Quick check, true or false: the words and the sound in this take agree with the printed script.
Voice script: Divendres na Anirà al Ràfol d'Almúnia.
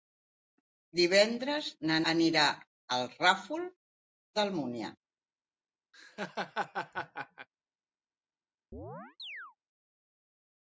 false